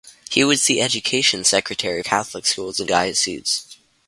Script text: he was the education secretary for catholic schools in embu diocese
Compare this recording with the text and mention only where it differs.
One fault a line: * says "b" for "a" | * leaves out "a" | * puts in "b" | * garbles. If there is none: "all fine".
* leaves out "for"
* leaves out "embu"